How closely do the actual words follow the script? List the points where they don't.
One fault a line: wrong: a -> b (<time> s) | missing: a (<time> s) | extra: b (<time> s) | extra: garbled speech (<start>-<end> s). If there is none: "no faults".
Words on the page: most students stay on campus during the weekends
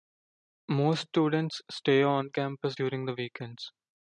no faults